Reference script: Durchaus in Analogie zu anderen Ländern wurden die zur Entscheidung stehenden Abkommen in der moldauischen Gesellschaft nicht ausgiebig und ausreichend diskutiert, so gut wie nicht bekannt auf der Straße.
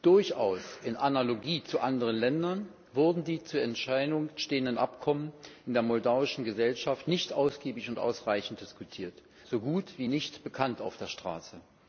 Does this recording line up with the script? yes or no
yes